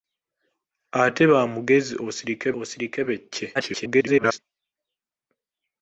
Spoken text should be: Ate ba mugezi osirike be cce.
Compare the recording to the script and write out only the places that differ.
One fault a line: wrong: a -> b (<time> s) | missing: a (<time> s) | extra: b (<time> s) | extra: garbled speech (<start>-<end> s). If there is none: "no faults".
extra: osirike (2.6 s)
extra: garbled speech (3.5-4.4 s)